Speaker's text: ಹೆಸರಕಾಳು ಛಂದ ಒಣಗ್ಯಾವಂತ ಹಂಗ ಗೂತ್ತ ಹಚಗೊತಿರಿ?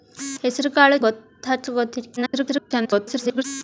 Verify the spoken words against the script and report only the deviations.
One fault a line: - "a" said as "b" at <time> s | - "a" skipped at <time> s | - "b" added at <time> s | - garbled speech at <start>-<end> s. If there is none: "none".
- "ಛಂದ ಒಣಗ್ಯಾವಂತ ಹಂಗ" skipped at 1.0 s
- garbled speech at 2.2-3.4 s